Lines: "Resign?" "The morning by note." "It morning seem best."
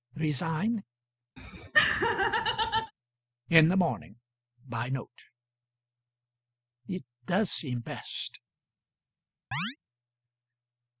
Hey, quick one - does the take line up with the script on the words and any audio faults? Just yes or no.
no